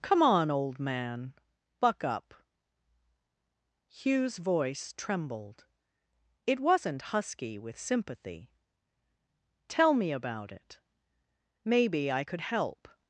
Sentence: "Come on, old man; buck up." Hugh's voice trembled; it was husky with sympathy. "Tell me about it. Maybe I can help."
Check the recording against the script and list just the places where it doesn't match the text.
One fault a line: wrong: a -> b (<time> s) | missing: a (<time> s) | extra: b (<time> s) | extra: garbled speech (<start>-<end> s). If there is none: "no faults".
wrong: was -> wasn't (6.6 s)
wrong: can -> could (12.2 s)